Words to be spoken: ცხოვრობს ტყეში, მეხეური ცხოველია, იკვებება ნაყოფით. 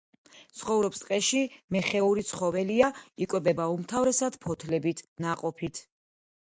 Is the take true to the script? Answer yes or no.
no